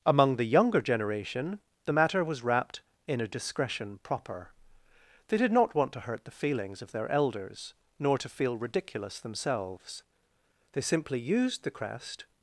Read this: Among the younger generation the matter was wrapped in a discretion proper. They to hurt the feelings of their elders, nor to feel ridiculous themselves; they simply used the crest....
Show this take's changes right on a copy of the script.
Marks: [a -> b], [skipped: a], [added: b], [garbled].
Among the younger generation the matter was wrapped in a discretion proper. They [added: did not want] to hurt the feelings of their elders, nor to feel ridiculous themselves; they simply used the crest....